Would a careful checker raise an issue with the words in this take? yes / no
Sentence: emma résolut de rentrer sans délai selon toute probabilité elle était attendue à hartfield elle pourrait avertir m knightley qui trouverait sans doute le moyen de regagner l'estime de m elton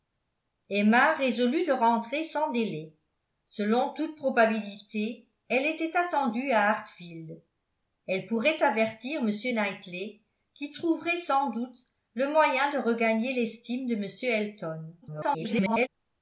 yes